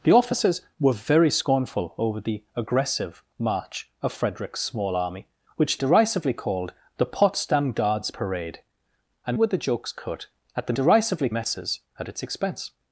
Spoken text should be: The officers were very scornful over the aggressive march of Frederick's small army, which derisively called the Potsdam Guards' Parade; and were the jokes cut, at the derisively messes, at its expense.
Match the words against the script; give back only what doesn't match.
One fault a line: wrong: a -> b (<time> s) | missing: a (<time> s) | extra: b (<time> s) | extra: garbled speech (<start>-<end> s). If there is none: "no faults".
no faults